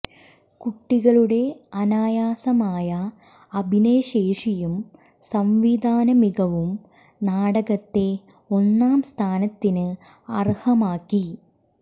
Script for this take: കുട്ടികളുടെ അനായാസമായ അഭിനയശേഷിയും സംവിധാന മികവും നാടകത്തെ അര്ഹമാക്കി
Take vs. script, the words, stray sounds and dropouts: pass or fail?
fail